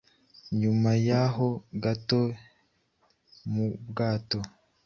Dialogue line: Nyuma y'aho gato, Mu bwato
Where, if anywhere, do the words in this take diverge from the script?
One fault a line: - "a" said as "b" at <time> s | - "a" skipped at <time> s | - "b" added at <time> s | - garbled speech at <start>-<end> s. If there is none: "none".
none